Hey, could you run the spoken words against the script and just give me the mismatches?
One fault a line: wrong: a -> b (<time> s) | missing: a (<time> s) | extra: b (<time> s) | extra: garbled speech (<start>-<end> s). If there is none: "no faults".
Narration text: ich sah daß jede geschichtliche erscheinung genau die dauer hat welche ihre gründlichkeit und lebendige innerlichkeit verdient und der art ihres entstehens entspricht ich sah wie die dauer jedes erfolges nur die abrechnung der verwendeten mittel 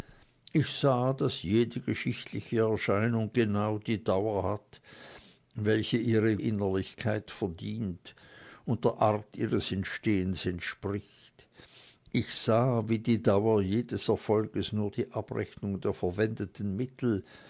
missing: gründlichkeit und lebendige (6.4 s)